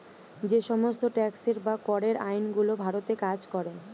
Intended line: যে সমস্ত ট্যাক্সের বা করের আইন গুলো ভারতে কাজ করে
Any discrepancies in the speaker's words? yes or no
no